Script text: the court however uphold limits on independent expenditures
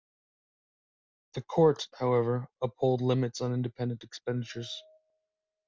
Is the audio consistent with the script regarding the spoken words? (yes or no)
yes